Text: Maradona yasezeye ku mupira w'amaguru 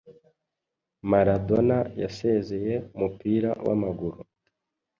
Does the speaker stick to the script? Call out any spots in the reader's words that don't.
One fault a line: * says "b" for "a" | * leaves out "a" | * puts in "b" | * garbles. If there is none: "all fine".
* leaves out "ku"